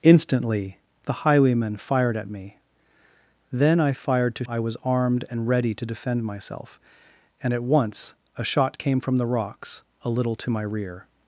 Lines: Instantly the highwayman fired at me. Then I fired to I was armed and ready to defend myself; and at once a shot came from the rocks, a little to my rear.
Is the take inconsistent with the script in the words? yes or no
no